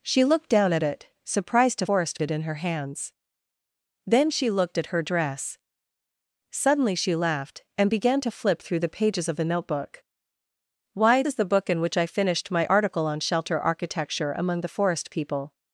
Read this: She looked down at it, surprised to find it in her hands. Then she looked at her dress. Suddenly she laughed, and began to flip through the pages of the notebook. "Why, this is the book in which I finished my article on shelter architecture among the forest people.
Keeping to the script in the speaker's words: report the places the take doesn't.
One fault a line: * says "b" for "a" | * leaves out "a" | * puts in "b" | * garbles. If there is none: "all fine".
* says "forest" for "find"
* leaves out "this"